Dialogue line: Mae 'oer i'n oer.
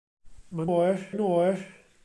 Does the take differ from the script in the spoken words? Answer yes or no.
no